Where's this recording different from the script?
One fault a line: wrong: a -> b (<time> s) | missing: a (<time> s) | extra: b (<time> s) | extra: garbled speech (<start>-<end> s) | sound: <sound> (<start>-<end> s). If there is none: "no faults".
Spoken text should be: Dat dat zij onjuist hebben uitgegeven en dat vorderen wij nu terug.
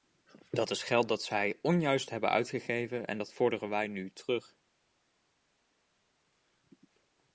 extra: is geld (0.7 s)